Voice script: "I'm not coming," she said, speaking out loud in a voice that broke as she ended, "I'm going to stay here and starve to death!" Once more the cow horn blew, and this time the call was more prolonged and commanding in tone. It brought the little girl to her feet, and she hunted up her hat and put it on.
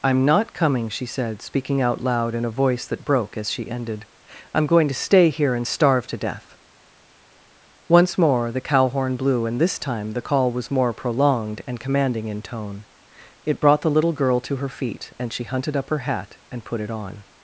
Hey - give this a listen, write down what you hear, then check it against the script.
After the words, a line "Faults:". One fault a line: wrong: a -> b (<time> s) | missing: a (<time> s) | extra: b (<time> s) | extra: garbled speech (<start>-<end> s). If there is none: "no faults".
"I'm not coming," she said, speaking out loud in a voice that broke as she ended, "I'm going to stay here and starve to death!" Once more the cow horn blew, and this time the call was more prolonged and commanding in tone. It brought the little girl to her feet, and she hunted up her hat and put it on.
Faults:
no faults